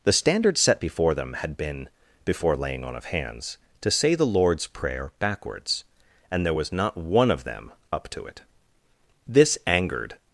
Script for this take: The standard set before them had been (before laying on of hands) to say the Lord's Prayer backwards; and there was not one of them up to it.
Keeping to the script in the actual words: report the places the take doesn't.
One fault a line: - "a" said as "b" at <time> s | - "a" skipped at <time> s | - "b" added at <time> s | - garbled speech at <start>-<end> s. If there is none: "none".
- "This angered" added at 9.2 s